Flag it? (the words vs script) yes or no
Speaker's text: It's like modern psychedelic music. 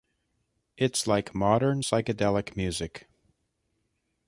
no